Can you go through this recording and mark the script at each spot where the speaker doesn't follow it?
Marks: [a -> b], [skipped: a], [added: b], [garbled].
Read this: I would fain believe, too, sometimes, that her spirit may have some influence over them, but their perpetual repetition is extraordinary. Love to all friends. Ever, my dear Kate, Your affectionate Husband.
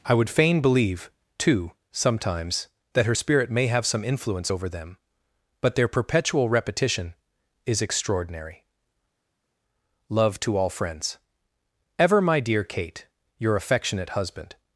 I would fain believe, too, sometimes, that her spirit may have some influence over them, but their perpetual repetition is extraordinary. Love to all friends. Ever, my dear Kate, Your affectionate Husband.